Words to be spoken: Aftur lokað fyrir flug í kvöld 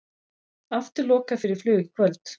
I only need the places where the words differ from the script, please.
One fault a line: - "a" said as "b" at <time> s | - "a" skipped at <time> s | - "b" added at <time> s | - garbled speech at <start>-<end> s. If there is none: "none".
none